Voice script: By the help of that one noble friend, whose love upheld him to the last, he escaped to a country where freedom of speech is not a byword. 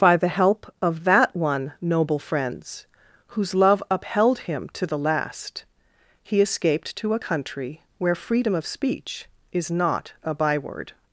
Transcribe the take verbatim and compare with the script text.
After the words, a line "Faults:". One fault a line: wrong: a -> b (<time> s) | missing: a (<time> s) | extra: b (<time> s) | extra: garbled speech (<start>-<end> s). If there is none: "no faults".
By the help of that one noble friends, whose love upheld him to the last, he escaped to a country where freedom of speech is not a byword.
Faults:
wrong: friend -> friends (2.2 s)